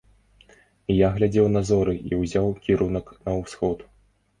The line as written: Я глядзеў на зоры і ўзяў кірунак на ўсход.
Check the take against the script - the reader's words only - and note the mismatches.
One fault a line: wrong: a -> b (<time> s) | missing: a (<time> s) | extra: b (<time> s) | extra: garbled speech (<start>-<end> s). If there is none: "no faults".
no faults